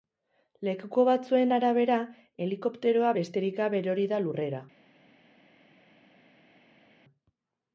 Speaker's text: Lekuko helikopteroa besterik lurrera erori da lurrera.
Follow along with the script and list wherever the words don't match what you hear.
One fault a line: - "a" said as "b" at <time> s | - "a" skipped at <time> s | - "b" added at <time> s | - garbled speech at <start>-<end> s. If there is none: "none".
- "batzuen arabera" added at 1.1 s
- "lurrera" said as "gabe" at 3.6 s